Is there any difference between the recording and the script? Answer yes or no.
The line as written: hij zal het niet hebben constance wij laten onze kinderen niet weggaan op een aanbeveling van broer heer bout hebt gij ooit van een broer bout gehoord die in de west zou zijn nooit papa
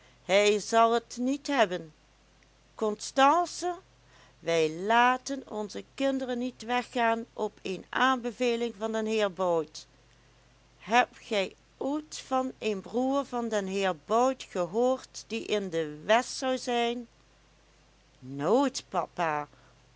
yes